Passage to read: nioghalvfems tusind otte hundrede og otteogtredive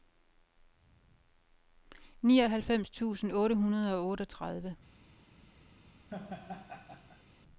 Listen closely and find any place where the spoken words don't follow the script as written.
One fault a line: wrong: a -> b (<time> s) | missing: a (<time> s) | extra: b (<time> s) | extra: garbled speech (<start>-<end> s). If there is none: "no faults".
no faults